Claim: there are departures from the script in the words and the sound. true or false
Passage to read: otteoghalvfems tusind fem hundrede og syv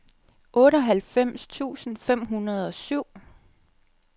false